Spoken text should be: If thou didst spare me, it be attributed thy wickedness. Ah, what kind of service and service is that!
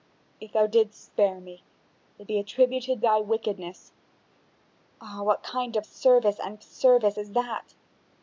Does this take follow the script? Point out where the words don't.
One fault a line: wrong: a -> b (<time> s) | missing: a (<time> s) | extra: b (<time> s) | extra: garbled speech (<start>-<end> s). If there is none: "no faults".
no faults